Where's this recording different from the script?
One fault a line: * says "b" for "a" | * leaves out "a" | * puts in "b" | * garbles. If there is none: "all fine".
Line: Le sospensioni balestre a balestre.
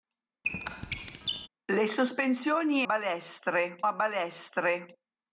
all fine